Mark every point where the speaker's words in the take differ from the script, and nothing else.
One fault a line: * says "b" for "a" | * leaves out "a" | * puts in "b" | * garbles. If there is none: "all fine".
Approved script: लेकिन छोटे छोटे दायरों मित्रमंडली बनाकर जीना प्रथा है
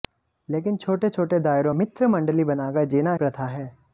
all fine